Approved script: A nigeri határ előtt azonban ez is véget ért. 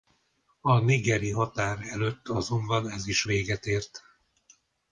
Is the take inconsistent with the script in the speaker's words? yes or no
no